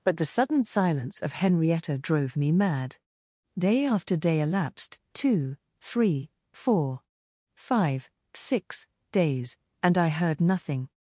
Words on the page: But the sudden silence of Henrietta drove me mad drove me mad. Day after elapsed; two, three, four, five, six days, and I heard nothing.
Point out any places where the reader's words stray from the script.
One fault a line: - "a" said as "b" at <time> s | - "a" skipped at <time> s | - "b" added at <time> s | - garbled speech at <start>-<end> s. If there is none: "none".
- "drove me mad" said as "Day after" at 3.5 s
- "after" skipped at 4.4 s